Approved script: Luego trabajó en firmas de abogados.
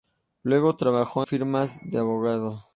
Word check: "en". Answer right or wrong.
wrong